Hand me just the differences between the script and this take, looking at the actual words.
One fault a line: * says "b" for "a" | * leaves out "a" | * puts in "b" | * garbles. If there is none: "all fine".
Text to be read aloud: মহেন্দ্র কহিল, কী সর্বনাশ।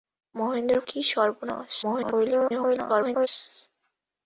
* leaves out "কহিল"
* garbles